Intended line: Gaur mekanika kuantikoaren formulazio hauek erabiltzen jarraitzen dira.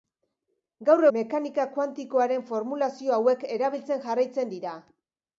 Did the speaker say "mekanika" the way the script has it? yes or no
yes